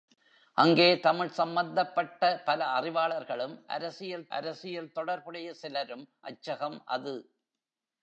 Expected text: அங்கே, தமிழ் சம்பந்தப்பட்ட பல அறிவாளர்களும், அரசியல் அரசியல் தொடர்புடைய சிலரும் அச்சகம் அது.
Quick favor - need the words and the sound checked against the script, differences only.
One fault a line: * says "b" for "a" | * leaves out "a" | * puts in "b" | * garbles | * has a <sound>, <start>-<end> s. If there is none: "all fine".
all fine